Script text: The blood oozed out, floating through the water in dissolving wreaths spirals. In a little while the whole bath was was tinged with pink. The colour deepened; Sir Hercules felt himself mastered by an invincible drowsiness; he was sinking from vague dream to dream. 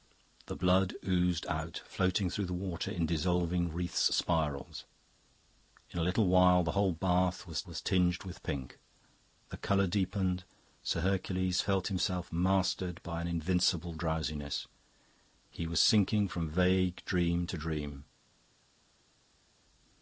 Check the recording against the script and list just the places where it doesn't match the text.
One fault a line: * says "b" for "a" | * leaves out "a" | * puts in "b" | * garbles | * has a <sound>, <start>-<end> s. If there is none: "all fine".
all fine